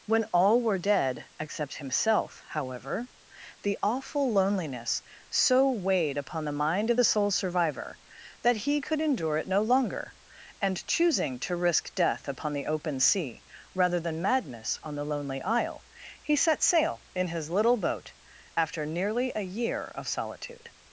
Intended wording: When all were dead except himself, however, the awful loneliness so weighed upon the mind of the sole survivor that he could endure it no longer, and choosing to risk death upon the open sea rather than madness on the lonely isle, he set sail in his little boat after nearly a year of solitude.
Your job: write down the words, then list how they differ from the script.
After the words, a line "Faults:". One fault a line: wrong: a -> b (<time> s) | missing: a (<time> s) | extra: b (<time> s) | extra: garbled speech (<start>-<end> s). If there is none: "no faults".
When all were dead except himself, however, the awful loneliness so weighed upon the mind of the sole survivor that he could endure it no longer, and choosing to risk death upon the open sea rather than madness on the lonely isle, he set sail in his little boat after nearly a year of solitude.
Faults:
no faults